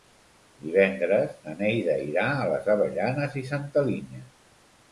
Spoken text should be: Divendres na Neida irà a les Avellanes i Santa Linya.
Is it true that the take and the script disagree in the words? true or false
false